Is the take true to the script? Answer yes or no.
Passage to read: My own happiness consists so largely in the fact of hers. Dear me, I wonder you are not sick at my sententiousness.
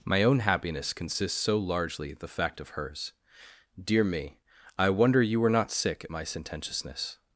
no